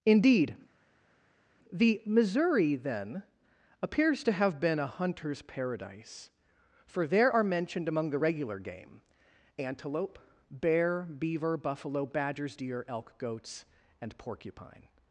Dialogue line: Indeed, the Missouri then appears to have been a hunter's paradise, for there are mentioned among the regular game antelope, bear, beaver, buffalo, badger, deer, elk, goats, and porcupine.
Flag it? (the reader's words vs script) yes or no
yes